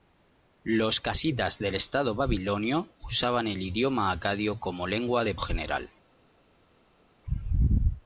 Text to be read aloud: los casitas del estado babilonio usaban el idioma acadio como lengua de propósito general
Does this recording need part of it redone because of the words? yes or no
yes